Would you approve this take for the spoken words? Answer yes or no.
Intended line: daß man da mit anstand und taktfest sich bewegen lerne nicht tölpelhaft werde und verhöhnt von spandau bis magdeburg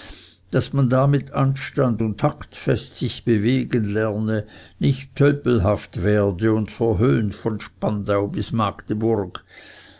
yes